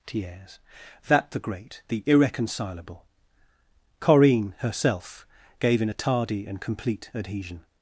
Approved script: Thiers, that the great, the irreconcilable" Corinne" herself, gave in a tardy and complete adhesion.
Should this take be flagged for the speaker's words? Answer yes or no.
no